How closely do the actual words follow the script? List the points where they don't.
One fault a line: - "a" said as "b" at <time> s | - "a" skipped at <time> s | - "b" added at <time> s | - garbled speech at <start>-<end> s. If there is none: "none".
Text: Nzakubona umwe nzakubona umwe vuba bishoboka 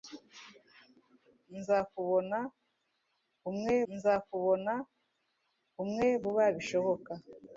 none